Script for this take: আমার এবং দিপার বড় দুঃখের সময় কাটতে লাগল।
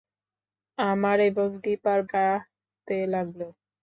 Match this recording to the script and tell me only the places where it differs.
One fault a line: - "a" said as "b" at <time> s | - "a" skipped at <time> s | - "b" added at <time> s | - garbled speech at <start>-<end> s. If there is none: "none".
- "বড় দুঃখের সময়" skipped at 2.0 s